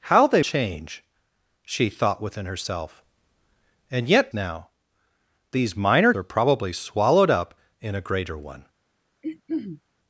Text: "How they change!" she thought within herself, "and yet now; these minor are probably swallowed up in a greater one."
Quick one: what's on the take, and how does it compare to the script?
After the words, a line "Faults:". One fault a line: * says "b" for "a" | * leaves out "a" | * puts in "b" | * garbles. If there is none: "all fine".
"How they change!" she thought within herself, "and yet now; these minor are probably swallowed up in a greater one."
Faults:
all fine